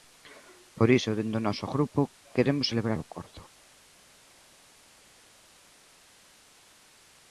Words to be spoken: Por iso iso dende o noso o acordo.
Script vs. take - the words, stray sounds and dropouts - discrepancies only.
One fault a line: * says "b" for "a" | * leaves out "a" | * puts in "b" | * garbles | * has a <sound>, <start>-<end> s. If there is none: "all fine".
* leaves out "iso"
* puts in "grupo queremos celebrar"